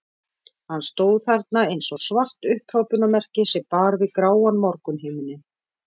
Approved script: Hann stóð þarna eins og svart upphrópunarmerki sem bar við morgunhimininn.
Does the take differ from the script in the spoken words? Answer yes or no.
yes